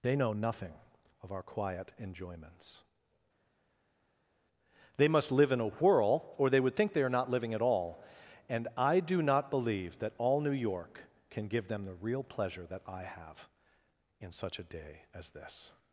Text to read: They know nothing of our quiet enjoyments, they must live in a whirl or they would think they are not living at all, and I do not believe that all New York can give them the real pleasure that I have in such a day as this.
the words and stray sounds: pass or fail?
pass